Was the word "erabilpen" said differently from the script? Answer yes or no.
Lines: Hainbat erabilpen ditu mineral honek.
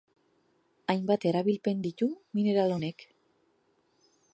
no